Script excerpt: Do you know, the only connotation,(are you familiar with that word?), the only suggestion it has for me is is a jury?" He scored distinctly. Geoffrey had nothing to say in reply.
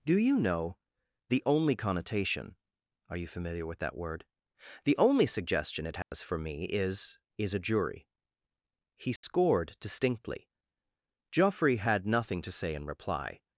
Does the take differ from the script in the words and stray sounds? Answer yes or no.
yes